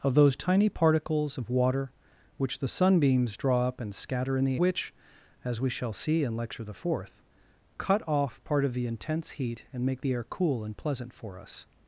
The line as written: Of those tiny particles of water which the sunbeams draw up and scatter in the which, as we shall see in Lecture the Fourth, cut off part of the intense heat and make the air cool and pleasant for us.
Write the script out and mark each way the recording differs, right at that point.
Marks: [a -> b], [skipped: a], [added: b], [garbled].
Of those tiny particles of water which the sunbeams draw up and scatter in the which, as we shall see in Lecture the Fourth, cut off part of the intense heat and make the air cool and pleasant for us.